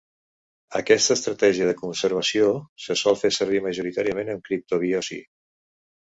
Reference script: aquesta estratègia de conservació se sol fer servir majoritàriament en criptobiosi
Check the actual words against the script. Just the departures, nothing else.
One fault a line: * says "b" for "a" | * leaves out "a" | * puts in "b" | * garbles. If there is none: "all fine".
all fine